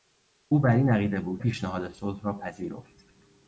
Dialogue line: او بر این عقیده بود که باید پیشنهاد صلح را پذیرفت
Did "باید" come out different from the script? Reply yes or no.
yes